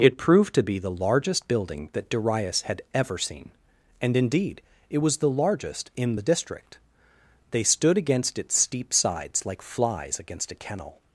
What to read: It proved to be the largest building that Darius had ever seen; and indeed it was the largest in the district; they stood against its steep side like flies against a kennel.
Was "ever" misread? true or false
false